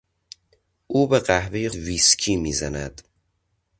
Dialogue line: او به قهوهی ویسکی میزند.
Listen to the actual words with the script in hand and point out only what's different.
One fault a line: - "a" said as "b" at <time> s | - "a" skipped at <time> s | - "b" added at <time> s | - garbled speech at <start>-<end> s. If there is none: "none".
none